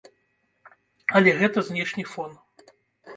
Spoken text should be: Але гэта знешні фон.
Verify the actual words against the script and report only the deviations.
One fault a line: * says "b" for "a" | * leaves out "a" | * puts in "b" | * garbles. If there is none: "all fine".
all fine